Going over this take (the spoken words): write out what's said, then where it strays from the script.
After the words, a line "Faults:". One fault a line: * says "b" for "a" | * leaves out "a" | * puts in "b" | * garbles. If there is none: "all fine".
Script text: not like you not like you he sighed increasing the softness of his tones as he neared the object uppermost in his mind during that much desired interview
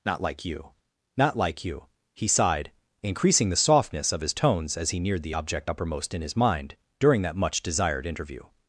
not like you not like you he sighed increasing the softness of his tones as he neared the object uppermost in his mind during that much desired interview
Faults:
all fine